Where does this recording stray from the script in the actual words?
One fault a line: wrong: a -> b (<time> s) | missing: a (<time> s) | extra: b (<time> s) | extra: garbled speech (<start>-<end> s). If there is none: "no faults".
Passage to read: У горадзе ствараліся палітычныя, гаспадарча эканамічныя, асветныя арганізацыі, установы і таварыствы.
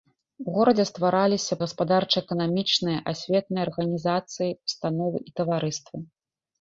missing: палітычныя (1.6 s)